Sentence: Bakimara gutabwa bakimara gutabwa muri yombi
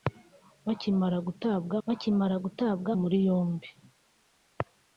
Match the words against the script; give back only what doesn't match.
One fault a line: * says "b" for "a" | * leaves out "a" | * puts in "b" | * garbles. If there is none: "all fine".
all fine